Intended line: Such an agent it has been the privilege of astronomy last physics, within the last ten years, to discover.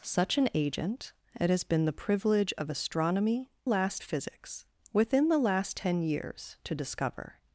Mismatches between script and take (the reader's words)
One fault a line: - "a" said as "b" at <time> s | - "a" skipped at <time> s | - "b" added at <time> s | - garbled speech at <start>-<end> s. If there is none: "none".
none